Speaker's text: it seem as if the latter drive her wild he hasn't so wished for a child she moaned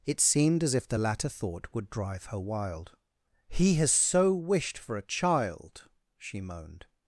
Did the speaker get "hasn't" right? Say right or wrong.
wrong